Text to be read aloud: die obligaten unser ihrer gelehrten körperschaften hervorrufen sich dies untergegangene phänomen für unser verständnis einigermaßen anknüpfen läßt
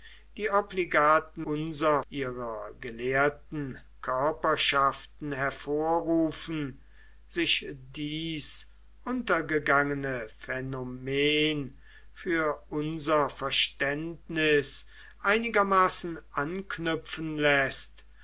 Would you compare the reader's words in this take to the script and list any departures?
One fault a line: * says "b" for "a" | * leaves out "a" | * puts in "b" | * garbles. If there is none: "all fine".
all fine